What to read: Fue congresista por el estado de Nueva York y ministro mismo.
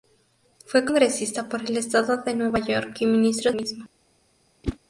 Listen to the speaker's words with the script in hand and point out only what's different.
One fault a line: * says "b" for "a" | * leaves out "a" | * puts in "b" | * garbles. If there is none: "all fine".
all fine